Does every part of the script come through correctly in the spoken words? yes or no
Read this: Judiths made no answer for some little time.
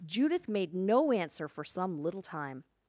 no